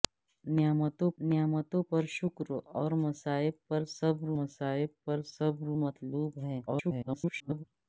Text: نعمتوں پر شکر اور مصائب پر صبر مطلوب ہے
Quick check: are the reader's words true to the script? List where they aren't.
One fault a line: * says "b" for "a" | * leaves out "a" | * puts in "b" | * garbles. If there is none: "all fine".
* puts in "نعمتوں"
* puts in "مصائب پر صبر"
* garbles